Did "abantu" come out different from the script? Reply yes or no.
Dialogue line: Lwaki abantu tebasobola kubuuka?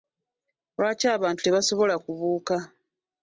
no